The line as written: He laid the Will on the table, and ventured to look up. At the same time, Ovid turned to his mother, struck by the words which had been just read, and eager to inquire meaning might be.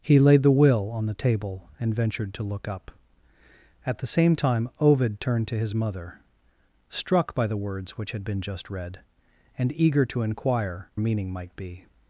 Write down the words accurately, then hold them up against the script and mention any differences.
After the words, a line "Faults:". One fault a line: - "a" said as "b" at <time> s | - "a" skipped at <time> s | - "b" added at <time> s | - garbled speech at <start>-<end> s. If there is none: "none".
He laid the Will on the table, and ventured to look up. At the same time, Ovid turned to his mother, struck by the words which had been just read, and eager to inquire meaning might be.
Faults:
none